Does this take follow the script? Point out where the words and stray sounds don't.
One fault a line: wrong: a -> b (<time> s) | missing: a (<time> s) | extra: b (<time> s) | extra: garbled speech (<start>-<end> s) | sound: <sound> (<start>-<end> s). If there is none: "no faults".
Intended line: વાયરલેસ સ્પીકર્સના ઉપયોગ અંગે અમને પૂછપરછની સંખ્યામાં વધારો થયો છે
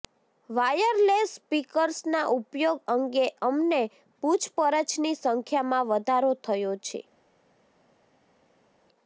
no faults